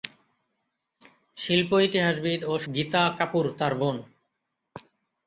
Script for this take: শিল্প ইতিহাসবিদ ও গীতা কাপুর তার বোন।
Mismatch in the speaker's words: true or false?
false